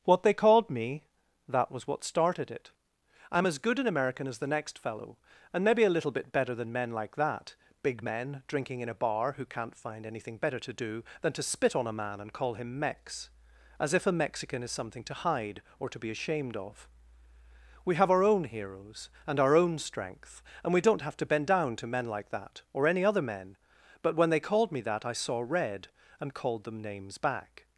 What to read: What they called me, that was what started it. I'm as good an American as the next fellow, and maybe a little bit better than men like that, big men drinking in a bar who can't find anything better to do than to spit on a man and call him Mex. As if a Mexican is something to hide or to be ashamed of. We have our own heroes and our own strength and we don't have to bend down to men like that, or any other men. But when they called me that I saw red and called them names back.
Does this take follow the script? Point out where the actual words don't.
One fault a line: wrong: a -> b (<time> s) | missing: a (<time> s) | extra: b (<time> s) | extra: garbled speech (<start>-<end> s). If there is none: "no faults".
no faults